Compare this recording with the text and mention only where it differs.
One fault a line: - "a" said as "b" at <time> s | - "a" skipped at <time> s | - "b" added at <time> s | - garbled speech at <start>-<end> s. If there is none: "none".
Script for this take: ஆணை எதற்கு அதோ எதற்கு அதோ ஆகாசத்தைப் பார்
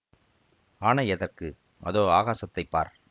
- "எதற்கு அதோ" skipped at 2.0 s